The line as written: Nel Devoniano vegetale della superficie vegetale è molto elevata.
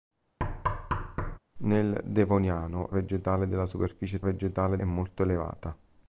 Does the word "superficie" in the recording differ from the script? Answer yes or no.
no